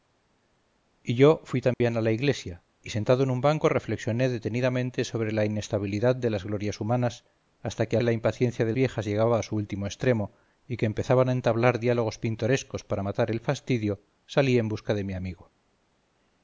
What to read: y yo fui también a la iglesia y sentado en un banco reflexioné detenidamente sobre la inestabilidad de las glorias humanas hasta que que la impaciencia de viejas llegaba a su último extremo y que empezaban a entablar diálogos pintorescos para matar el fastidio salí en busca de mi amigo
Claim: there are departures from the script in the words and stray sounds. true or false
true